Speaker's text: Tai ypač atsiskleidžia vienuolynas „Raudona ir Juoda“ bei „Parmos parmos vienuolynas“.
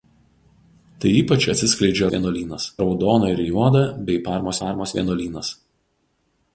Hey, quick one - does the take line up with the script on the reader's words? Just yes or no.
yes